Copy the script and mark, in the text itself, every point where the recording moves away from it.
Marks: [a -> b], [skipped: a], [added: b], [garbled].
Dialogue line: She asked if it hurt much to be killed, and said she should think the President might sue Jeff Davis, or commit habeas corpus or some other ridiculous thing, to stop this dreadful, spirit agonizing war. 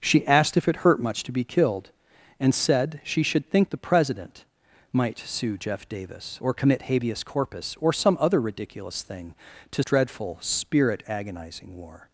She asked if it hurt much to be killed, and said she should think the President might sue Jeff Davis, or commit habeas corpus or some other ridiculous thing, to [skipped: stop this] dreadful, spirit agonizing war.